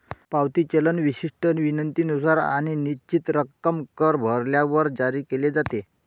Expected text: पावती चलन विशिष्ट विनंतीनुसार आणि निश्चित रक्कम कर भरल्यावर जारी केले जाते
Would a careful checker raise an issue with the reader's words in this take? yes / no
no